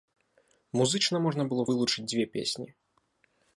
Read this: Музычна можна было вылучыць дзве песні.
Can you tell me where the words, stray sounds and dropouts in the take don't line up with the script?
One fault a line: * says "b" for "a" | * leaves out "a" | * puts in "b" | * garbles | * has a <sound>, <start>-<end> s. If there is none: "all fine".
all fine